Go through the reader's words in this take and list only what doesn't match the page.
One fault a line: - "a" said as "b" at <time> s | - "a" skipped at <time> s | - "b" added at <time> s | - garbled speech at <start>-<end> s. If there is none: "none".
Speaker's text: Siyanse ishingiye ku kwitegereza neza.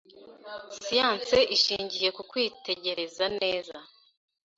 none